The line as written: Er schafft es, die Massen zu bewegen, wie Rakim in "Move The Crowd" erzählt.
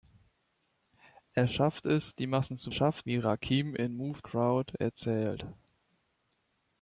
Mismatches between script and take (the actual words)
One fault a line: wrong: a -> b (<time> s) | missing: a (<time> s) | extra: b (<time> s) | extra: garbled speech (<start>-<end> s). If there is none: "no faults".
wrong: bewegen -> schafft (2.7 s)
missing: The (4.2 s)